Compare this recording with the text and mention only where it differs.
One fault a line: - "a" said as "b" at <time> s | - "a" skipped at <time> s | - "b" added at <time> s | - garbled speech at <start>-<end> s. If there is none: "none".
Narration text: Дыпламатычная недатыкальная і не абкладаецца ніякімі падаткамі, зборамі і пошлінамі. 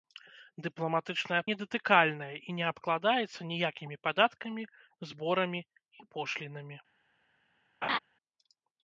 none